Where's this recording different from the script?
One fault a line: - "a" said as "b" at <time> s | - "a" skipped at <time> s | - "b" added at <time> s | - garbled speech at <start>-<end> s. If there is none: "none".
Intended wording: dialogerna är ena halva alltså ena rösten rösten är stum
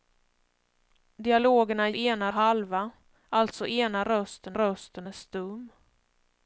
none